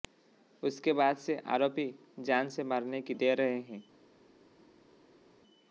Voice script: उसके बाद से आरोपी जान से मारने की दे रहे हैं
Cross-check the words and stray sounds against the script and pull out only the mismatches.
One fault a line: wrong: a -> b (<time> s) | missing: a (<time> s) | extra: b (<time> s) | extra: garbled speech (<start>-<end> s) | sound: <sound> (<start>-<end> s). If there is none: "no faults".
no faults